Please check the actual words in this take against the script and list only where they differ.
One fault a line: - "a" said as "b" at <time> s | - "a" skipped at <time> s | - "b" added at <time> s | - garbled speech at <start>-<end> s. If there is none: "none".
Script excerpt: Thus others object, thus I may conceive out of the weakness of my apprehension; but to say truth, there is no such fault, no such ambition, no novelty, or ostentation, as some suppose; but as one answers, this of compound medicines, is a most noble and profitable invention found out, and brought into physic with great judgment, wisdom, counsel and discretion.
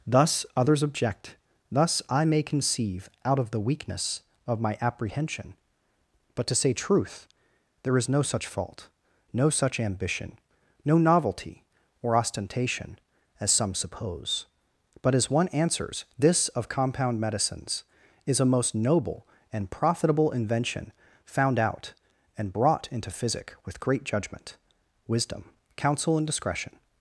none